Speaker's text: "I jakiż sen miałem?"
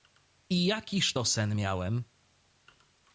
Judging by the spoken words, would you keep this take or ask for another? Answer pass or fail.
fail